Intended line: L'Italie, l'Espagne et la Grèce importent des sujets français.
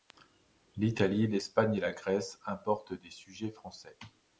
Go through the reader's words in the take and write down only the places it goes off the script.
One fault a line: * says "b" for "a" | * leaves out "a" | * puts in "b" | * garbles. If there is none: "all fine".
all fine